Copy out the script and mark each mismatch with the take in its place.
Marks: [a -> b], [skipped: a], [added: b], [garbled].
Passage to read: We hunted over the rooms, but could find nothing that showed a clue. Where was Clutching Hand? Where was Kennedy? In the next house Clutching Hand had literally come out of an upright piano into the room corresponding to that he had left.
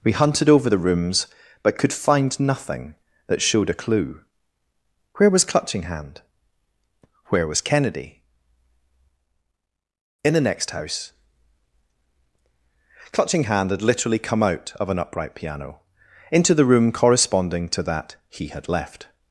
We hunted over the rooms, but could find nothing that showed a clue. Where was Clutching Hand? Where was Kennedy? In the next house Clutching Hand had literally come out of an upright piano into the room corresponding to that he had left.